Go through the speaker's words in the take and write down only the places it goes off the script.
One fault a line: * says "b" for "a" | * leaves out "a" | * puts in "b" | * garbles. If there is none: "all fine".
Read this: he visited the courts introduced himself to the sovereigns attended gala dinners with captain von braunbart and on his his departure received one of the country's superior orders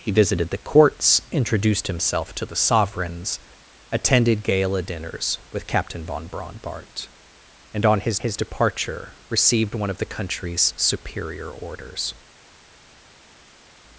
all fine